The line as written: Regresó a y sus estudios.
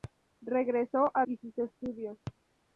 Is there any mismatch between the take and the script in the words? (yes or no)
no